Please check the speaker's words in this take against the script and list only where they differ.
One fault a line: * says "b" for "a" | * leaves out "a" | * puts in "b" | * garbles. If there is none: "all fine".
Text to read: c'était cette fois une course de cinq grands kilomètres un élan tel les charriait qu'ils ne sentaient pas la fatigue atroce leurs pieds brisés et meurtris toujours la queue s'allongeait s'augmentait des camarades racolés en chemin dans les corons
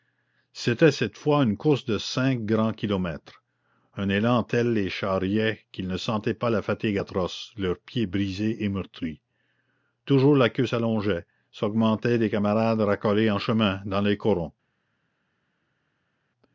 all fine